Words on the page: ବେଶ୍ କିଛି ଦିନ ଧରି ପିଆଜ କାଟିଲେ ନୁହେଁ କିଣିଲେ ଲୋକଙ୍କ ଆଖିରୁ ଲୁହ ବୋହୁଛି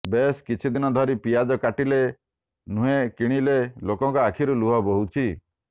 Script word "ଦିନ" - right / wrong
right